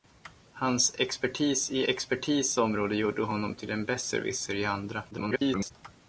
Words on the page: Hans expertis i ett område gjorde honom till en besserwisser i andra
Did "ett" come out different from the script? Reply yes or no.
yes